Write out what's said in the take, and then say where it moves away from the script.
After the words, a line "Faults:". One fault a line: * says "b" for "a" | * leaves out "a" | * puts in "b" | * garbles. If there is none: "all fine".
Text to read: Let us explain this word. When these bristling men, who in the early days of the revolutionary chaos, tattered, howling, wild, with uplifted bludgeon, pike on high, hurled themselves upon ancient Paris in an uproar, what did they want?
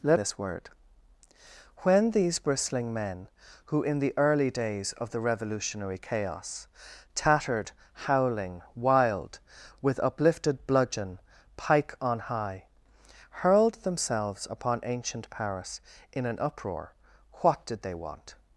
Let this word. When these bristling men, who in the early days of the revolutionary chaos, tattered, howling, wild, with uplifted bludgeon, pike on high, hurled themselves upon ancient Paris in an uproar, what did they want?
Faults:
* leaves out "us explain"